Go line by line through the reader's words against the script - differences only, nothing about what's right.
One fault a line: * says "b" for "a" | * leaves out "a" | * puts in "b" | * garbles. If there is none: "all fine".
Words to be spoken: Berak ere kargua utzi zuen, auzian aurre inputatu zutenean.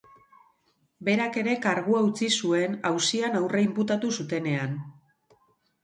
all fine